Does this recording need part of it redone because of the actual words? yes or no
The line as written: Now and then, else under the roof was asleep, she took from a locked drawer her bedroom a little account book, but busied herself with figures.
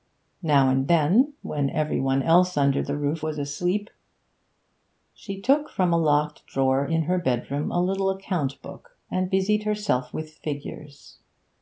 yes